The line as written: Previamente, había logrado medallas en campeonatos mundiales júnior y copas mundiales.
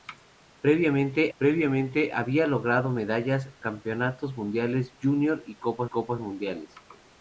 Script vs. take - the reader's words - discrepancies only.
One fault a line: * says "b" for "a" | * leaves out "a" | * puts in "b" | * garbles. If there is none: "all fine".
* puts in "previamente"
* leaves out "en"
* puts in "copas"